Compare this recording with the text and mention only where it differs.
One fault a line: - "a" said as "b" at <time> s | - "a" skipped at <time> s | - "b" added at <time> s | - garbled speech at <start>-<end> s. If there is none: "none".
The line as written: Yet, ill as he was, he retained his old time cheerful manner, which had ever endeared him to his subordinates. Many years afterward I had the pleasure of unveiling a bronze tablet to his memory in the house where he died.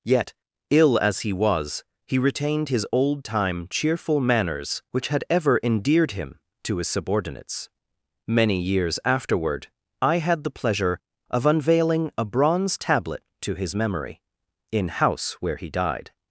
- "manner" said as "manners" at 4.2 s
- "the" skipped at 14.9 s